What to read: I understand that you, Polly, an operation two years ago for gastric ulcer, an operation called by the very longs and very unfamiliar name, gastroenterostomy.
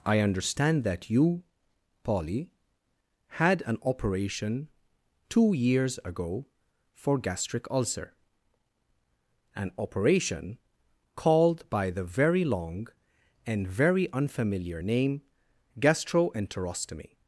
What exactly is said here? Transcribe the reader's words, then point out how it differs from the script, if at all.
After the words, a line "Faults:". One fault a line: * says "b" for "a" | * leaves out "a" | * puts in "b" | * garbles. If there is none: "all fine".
I understand that you, Polly, had an operation two years ago for gastric ulcer, an operation called by the very long and very unfamiliar name, gastroenterostomy.
Faults:
* puts in "had"
* says "long" for "longs"